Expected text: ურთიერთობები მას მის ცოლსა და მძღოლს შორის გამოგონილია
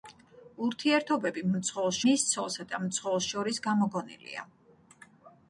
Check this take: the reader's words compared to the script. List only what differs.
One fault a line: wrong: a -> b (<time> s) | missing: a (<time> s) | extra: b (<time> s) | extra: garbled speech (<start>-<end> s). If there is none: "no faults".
wrong: მას -> მძღოლს (1.6 s)